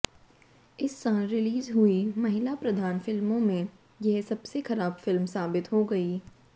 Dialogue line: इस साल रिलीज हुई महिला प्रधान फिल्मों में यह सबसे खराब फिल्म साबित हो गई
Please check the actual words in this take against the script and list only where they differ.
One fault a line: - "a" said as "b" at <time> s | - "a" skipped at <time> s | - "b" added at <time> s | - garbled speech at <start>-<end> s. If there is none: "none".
none